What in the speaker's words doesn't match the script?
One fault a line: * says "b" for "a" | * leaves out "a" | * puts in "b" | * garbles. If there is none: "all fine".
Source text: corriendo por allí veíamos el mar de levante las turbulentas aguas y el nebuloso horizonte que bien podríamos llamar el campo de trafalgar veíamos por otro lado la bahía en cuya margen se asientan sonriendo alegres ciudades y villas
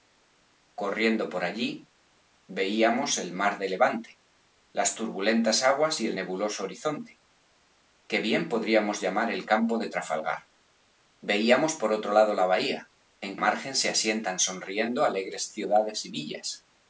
* leaves out "cuya"